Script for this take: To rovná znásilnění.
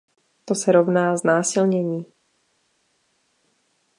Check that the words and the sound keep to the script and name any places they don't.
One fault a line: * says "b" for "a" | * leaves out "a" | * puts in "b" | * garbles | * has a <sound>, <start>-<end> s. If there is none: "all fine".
* puts in "se"